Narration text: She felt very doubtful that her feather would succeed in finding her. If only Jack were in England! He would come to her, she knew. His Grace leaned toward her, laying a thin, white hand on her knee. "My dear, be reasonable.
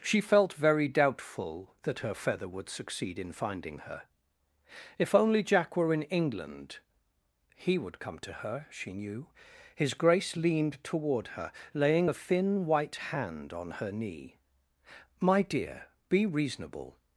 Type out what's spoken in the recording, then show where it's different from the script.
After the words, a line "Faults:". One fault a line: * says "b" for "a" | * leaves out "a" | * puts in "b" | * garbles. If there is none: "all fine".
She felt very doubtful that her feather would succeed in finding her. If only Jack were in England! He would come to her, she knew. His Grace leaned toward her, laying a thin, white hand on her knee. "My dear, be reasonable.
Faults:
all fine